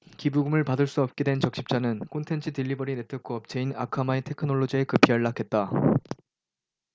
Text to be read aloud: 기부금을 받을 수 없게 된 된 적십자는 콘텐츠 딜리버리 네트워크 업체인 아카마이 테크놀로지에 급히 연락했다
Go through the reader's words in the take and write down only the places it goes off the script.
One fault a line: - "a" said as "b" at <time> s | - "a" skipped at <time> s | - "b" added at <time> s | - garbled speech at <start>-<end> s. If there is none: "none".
- "된" skipped at 1.4 s